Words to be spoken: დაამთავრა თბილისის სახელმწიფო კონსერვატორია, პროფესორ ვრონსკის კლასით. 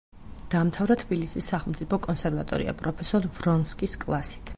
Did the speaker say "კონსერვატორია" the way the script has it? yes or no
yes